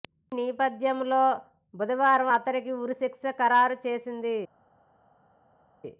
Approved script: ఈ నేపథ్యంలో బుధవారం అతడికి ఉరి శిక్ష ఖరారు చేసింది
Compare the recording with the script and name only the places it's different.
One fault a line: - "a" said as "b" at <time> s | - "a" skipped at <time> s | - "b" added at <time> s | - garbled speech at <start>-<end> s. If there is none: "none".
none